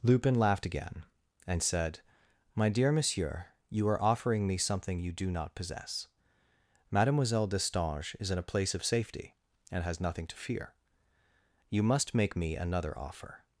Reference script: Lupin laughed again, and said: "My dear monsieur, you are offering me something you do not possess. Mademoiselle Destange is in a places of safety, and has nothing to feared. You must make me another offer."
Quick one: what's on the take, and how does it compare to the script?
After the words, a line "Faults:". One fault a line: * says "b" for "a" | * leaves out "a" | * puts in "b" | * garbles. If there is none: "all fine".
Lupin laughed again, and said: "My dear monsieur, you are offering me something you do not possess. Mademoiselle Destange is in a place of safety, and has nothing to fear. You must make me another offer."
Faults:
* says "place" for "places"
* says "fear" for "feared"